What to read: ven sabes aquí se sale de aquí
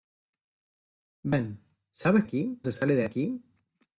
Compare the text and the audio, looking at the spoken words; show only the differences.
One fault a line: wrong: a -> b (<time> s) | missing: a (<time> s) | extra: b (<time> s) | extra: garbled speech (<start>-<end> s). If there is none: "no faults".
no faults